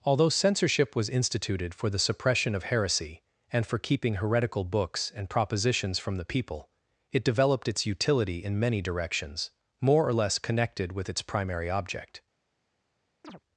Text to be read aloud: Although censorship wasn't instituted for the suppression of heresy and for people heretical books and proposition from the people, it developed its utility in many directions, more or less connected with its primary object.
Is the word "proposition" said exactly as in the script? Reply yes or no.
no